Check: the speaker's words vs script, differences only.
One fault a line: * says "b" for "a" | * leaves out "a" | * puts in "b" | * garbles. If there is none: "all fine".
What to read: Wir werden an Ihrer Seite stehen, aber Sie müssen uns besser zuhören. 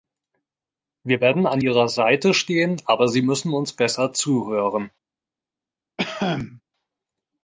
all fine